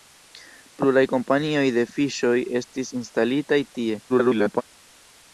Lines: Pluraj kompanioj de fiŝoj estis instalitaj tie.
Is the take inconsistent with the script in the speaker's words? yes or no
yes